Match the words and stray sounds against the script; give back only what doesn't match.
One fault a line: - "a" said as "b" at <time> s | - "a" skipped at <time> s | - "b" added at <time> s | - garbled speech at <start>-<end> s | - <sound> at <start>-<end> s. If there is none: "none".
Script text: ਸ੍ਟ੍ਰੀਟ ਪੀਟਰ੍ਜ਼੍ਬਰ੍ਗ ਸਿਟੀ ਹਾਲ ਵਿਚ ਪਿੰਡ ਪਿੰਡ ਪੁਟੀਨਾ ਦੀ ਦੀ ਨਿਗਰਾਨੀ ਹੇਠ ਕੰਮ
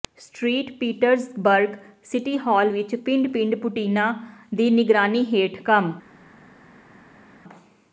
- "ਦੀ" skipped at 4.7 s